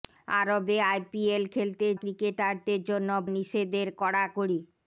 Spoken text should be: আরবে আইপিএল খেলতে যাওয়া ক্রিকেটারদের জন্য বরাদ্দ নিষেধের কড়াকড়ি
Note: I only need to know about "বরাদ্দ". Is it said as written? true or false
false